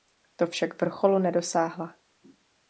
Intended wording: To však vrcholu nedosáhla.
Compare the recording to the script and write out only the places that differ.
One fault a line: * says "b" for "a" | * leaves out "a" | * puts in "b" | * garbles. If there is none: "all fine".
all fine